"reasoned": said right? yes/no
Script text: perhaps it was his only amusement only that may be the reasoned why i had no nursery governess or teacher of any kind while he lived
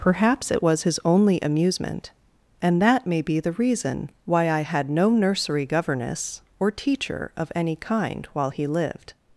no